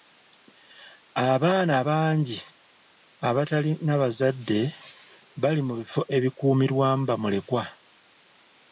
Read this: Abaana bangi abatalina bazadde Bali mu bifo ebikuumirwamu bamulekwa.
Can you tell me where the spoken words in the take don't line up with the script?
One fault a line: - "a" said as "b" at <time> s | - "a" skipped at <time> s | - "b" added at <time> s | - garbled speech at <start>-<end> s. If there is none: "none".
none